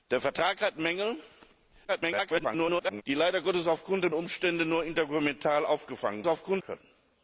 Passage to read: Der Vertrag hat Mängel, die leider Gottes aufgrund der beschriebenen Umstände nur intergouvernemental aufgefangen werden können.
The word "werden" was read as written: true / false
false